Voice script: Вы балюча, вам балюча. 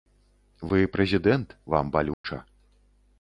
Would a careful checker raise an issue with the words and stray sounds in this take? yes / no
yes